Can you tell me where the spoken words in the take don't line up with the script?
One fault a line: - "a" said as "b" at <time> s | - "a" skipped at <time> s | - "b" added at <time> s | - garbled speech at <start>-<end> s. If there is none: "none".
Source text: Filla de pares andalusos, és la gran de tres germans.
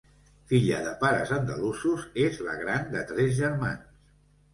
none